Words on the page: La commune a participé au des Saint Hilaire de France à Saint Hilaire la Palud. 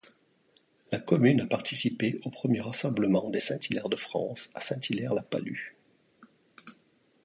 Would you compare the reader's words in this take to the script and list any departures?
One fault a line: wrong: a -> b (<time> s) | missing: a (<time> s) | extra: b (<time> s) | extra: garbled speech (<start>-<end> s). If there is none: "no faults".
extra: premier rassemblement (2.3 s)